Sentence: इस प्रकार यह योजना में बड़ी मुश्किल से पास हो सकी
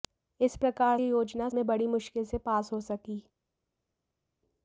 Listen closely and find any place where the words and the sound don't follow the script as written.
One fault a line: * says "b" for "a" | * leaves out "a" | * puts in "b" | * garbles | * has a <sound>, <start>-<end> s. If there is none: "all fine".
all fine